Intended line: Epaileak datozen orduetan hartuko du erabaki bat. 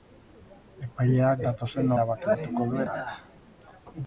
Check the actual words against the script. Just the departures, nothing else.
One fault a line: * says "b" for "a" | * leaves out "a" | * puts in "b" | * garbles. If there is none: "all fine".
* says "erabaki" for "orduetan"
* leaves out "erabaki"